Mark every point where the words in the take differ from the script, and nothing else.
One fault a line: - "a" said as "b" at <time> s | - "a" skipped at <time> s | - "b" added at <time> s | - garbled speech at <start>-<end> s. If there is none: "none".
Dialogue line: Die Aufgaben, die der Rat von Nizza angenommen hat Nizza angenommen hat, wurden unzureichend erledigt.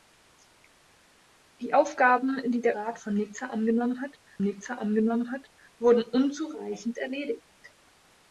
none